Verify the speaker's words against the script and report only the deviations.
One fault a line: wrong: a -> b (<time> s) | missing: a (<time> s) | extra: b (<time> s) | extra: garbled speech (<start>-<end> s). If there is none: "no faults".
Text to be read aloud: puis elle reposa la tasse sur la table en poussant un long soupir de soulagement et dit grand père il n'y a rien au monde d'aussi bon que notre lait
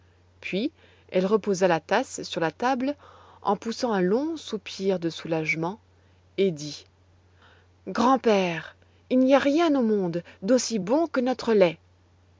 no faults